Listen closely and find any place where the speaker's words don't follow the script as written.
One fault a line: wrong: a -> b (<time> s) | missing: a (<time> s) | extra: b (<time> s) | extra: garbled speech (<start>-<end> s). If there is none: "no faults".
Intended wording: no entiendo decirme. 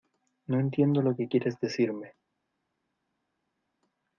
extra: lo que quieres (1.0 s)